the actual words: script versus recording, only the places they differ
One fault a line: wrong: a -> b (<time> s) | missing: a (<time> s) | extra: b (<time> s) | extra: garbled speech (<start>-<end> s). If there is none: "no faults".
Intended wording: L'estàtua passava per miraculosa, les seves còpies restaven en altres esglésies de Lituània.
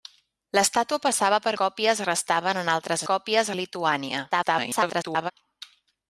missing: miraculosa les seves (1.5 s)
wrong: esglésies -> còpies (3.1 s)
extra: garbled speech (4.3-5.3 s)